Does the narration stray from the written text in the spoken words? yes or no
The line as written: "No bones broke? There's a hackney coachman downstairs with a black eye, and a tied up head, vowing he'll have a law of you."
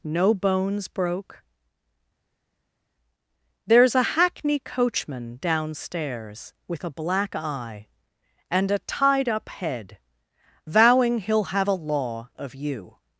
no